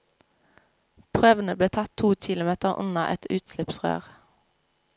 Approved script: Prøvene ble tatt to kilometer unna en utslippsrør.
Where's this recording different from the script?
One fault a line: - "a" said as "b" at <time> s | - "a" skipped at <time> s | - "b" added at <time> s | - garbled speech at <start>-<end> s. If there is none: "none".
- "en" said as "et" at 3.2 s